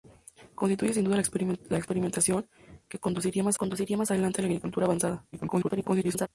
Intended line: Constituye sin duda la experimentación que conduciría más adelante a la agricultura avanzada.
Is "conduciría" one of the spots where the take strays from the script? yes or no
no